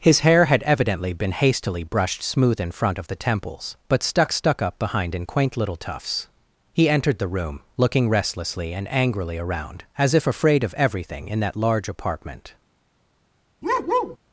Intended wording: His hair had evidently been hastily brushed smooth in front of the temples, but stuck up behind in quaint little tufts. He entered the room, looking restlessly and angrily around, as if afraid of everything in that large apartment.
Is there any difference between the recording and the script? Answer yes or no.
yes